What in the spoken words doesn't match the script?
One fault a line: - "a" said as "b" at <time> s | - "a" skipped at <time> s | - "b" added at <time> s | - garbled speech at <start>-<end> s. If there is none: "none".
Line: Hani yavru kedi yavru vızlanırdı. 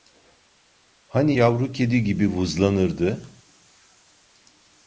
- "yavru" said as "gibi" at 2.0 s